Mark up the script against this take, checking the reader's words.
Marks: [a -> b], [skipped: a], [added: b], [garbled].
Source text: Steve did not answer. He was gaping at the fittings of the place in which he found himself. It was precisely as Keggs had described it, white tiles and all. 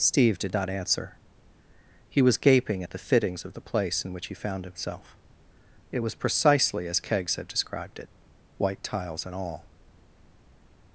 Steve did not answer. He was gaping at the fittings of the place in which he found himself. It was precisely as Keggs had described it, white tiles and all.